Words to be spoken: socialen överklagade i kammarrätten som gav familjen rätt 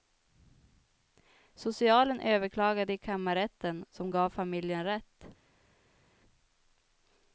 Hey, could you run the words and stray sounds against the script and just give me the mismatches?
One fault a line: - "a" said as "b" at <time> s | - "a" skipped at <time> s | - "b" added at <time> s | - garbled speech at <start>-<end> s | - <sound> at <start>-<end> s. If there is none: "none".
none